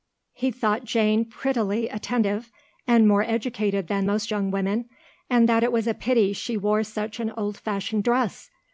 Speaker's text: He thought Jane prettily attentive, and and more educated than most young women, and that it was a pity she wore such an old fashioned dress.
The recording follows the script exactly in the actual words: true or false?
false